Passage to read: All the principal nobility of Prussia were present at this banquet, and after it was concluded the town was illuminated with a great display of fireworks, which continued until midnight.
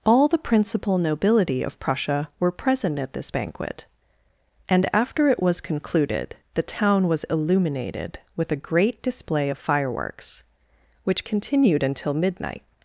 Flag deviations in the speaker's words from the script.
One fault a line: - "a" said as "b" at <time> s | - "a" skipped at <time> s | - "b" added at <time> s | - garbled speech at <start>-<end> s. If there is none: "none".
none